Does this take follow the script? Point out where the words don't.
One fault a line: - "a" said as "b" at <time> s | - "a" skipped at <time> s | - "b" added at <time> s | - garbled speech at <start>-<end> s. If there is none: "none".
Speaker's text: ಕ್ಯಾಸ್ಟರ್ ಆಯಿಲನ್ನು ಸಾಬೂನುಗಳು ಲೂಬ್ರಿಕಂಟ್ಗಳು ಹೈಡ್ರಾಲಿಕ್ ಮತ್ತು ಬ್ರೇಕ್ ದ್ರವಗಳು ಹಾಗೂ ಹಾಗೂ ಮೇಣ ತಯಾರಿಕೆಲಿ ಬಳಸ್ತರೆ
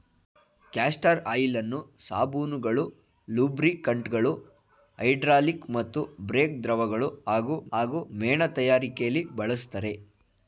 none